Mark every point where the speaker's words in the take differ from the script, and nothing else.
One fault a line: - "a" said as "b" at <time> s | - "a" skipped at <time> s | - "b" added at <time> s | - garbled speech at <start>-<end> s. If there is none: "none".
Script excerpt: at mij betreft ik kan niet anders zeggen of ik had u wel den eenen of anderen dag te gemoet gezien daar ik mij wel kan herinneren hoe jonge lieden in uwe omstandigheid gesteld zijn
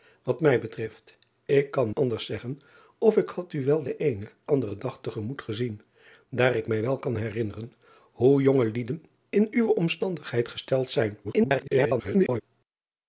- "niet" skipped at 1.9 s
- "of" skipped at 4.3 s
- garbled speech at 11.2-12.4 s